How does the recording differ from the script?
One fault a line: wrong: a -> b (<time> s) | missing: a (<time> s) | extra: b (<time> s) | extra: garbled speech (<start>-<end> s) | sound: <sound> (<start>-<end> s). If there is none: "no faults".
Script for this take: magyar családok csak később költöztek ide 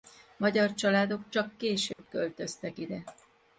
sound: dropout (1.9-2.0 s)